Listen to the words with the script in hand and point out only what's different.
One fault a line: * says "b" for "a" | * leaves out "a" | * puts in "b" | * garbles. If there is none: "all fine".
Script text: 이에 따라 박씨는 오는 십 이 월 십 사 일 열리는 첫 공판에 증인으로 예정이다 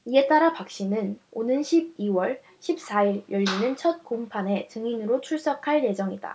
* puts in "출석할"